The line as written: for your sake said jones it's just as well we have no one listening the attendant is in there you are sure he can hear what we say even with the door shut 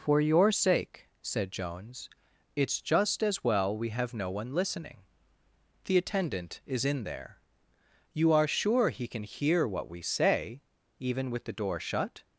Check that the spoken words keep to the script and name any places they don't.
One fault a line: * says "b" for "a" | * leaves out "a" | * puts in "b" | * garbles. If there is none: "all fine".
all fine